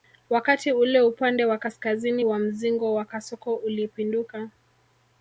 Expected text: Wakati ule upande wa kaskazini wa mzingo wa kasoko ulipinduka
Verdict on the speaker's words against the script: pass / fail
pass